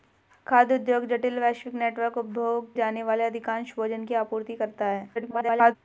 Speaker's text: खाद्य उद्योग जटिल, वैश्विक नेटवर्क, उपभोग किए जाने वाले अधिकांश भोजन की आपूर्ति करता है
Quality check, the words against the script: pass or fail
fail